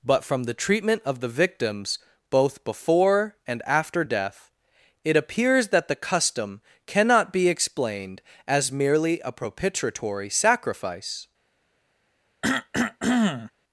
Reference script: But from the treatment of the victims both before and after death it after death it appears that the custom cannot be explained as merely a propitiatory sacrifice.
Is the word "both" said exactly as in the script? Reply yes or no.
yes